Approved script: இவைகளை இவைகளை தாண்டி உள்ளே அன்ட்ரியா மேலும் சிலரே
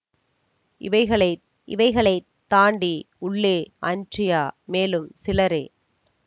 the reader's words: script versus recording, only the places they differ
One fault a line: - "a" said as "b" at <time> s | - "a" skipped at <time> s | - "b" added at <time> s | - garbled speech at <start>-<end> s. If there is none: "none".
none